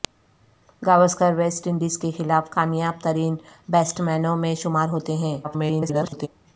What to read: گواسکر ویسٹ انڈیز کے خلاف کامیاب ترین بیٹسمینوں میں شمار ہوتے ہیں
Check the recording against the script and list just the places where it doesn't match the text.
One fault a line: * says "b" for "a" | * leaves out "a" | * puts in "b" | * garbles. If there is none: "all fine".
* garbles